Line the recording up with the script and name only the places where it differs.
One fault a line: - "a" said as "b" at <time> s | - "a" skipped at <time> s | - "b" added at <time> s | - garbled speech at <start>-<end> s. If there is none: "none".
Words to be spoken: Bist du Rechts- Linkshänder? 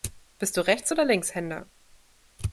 - "oder" added at 0.9 s